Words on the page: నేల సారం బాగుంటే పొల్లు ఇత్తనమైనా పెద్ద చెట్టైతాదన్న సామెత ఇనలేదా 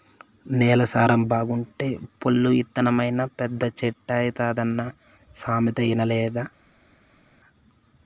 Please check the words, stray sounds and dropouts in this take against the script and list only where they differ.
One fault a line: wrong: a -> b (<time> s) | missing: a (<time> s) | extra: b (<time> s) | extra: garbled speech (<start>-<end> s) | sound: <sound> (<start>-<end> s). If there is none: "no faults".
no faults